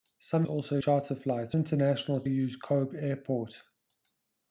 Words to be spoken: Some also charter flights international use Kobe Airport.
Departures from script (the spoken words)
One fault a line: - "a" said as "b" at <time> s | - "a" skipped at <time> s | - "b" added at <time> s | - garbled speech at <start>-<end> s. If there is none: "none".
none